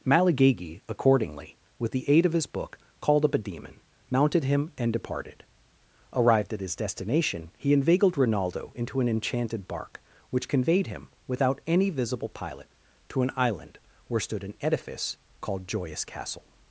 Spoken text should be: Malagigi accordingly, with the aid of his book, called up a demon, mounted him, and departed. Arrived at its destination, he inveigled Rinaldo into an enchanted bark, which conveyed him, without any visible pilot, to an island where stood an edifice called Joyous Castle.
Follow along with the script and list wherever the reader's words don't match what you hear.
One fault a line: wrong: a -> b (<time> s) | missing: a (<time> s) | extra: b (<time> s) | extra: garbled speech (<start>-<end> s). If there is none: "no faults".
wrong: its -> his (6.6 s)